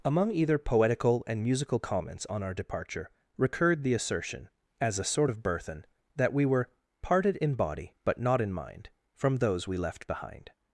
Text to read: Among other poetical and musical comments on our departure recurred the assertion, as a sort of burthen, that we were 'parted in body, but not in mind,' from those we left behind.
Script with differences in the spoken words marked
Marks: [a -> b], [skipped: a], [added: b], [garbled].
Among [other -> either] poetical and musical comments on our departure recurred the assertion, as a sort of burthen, that we were 'parted in body, but not in mind,' from those we left behind.